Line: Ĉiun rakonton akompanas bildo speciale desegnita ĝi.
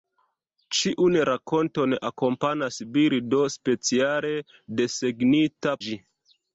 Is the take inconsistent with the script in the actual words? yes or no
no